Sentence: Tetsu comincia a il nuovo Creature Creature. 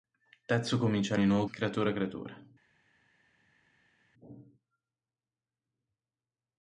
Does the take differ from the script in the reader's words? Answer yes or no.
no